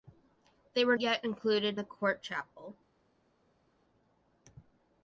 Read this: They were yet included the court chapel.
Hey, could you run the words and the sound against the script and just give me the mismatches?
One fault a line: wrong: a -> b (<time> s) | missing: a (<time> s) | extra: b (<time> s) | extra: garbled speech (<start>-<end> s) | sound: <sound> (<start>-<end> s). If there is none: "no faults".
no faults